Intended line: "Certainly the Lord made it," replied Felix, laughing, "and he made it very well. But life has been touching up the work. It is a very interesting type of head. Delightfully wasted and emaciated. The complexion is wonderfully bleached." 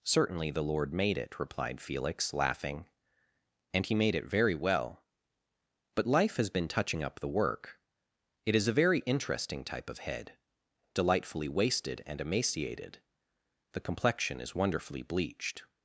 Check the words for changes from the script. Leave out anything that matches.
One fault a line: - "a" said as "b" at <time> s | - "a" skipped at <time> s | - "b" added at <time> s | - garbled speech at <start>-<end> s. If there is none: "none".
none